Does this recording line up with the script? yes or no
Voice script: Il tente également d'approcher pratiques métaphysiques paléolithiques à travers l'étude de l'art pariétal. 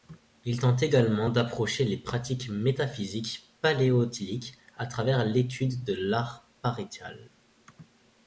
no